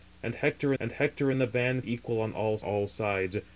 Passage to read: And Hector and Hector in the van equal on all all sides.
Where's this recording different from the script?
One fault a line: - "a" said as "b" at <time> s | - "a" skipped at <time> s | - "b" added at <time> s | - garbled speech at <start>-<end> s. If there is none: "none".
none